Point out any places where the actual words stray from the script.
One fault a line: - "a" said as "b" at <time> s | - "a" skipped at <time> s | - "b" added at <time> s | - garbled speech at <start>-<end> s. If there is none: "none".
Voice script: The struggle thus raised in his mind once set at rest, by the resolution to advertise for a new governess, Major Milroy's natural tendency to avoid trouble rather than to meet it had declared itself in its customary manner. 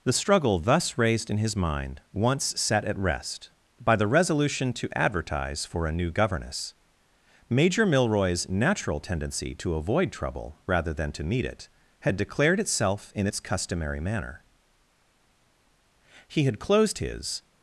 - "He had closed his" added at 16.3 s